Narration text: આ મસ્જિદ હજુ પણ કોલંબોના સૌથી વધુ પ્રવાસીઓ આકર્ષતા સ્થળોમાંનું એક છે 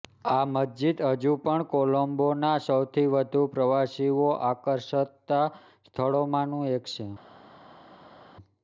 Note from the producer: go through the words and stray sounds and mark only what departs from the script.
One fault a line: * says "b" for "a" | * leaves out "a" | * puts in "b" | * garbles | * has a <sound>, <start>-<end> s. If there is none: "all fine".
all fine